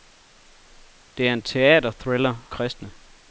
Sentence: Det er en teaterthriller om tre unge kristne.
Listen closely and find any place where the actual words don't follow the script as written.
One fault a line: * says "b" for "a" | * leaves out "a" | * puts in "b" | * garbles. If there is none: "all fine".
* leaves out "om tre unge"